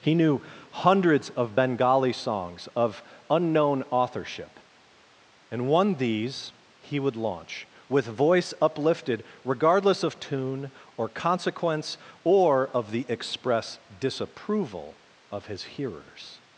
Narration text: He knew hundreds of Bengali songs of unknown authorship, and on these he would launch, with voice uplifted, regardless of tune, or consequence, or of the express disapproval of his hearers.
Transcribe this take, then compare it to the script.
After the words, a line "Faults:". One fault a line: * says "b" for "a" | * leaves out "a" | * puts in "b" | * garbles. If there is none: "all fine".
He knew hundreds of Bengali songs of unknown authorship, and one these he would launch, with voice uplifted, regardless of tune, or consequence, or of the express disapproval of his hearers.
Faults:
* says "one" for "on"